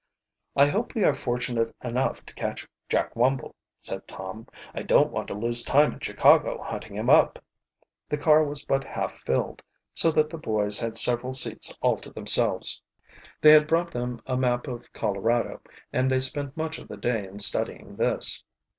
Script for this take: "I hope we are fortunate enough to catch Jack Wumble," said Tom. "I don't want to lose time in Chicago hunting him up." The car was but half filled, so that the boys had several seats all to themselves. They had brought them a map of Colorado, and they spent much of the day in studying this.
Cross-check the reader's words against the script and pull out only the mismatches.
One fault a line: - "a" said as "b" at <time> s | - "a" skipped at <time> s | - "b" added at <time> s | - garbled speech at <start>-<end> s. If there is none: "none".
none